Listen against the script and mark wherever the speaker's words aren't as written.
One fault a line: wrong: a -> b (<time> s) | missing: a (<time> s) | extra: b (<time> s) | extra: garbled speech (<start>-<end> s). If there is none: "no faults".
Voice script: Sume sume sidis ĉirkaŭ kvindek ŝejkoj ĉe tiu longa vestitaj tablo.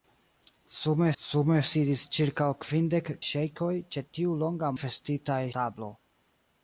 no faults